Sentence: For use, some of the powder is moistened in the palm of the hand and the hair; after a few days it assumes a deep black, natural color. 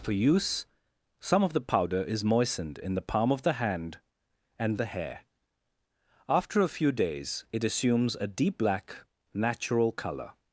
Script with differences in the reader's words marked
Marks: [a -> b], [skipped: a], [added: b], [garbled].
For use, some of the powder is moistened in the palm of the hand and the hair; after a few days it assumes a deep black, natural color.